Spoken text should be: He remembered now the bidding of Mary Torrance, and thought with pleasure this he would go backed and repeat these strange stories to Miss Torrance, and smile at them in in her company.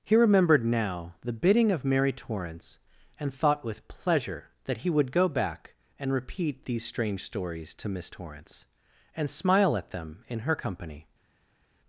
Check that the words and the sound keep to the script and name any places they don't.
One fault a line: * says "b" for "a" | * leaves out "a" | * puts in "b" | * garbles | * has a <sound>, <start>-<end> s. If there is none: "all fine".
* says "that" for "this"
* says "back" for "backed"
* leaves out "in"